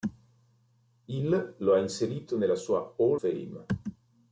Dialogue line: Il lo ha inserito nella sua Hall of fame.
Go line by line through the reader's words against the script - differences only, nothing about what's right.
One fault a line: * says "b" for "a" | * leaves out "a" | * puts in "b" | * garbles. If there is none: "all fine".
* leaves out "of"